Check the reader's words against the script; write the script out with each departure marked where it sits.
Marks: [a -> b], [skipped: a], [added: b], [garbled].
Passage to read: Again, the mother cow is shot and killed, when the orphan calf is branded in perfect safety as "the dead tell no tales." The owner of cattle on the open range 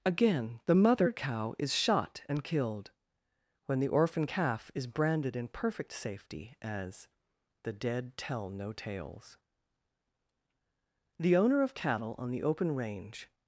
Again, the mother cow is shot and killed, when the orphan calf is branded in perfect safety as "the dead tell no tales." The owner of cattle on the open range